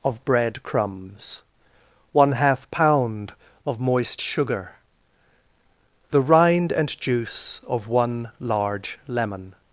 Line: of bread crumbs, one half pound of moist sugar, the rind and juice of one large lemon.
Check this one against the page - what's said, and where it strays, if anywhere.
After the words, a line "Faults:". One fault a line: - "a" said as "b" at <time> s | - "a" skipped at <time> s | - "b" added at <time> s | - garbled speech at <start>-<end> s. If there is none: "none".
of bread crumbs, one half pound of moist sugar, the rind and juice of one large lemon.
Faults:
none